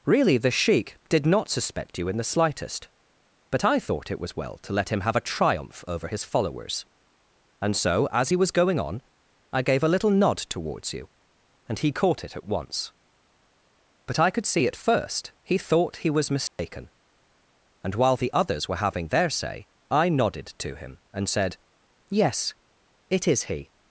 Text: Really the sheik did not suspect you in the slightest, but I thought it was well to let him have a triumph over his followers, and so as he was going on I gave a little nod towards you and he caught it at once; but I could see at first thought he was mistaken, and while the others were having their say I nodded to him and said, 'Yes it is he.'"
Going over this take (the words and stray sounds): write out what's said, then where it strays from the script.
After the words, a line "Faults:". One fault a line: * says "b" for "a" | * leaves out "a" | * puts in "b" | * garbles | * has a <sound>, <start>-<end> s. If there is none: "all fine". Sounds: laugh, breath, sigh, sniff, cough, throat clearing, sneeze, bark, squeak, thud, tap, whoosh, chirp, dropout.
Really the sheik did not suspect you in the slightest, but I thought it was well to let him have a triumph over his followers, and so as he was going on I gave a little nod towards you and he caught it at once; but I could see at first he thought he was mistaken, and while the others were having their say I nodded to him and said, 'Yes it is he.'"
Faults:
* puts in "he"
* has a dropout, 16.5-16.6 s